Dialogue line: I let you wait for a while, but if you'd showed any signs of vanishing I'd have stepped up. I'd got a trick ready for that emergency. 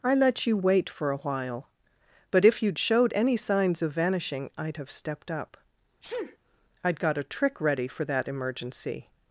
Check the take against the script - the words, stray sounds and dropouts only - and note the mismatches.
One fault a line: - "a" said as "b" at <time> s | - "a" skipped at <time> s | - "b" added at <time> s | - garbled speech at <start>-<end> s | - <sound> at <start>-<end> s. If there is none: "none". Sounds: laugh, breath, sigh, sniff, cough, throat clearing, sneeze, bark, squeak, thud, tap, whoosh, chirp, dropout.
- sneeze at 6.0-6.4 s